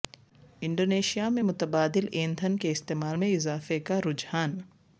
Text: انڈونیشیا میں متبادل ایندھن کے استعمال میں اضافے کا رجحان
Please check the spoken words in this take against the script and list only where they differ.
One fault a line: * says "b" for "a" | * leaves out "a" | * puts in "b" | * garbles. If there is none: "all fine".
all fine